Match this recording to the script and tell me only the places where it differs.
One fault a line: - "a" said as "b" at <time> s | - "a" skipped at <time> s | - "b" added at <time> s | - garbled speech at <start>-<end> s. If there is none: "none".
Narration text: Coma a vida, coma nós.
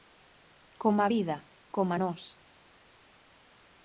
none